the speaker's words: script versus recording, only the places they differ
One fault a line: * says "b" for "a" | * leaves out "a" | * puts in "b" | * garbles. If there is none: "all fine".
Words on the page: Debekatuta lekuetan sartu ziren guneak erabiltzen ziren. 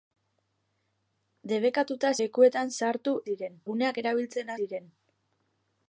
all fine